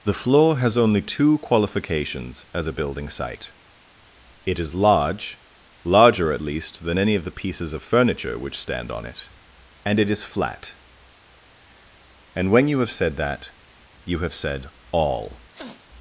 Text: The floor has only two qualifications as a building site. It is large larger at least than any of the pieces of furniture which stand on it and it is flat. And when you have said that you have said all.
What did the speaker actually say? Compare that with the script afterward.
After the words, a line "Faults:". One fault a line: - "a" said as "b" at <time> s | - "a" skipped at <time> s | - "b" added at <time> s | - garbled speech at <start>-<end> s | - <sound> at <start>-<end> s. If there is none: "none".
The floor has only two qualifications as a building site. It is large larger at least than any of the pieces of furniture which stand on it and it is flat. And when you have said that you have said all.
Faults:
- sniff at 15.5-15.9 s